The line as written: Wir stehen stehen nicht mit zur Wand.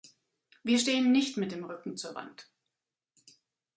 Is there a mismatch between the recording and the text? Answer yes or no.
yes